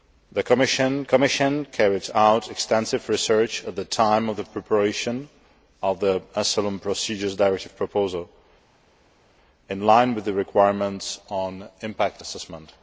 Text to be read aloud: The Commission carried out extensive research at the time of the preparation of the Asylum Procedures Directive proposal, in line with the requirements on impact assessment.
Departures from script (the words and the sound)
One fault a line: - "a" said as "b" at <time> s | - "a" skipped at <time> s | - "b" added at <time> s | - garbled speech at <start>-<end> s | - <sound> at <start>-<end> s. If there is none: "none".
- "Commission" added at 1.0 s